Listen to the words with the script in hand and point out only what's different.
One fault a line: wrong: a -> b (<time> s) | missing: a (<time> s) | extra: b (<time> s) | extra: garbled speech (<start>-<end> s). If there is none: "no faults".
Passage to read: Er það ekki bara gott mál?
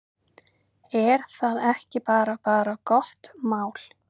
extra: bara (2.5 s)